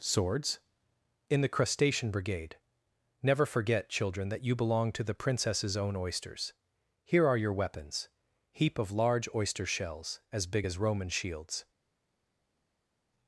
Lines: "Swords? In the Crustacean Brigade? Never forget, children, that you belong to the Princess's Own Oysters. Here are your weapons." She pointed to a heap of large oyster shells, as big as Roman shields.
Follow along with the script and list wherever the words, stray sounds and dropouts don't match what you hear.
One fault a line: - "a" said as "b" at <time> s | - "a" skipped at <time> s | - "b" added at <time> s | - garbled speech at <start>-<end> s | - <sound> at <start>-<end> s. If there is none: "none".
- "She pointed to a" skipped at 8.1 s